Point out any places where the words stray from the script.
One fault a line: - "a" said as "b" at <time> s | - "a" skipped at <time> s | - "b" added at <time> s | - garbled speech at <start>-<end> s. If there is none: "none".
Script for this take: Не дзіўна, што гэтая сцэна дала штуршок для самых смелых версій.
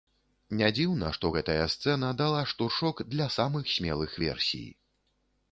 none